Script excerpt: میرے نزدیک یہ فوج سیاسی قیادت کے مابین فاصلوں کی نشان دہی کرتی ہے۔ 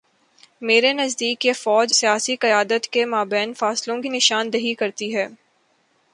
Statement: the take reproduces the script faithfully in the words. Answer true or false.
true